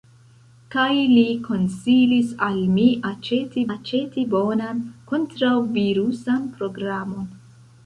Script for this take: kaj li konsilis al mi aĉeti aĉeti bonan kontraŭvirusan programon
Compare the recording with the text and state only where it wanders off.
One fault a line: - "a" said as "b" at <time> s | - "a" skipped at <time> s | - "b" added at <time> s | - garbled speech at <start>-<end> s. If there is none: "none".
none